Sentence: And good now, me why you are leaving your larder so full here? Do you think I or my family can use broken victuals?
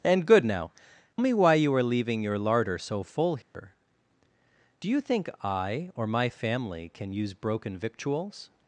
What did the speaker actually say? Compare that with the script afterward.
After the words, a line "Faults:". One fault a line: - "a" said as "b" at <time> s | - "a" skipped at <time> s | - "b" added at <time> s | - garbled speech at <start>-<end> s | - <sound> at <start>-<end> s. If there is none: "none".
And good now, me why you are leaving your larder so full here? Do you think I or my family can use broken victuals?
Faults:
- dropout at 3.4-3.5 s